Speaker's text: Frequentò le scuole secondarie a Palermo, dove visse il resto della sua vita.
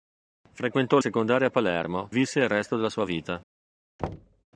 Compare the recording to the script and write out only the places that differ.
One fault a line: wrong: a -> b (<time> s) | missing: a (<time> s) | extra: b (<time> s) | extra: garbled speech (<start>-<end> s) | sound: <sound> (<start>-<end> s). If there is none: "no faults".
missing: le scuole (1.0 s)
missing: dove (2.1 s)
sound: thud (4.0-4.4 s)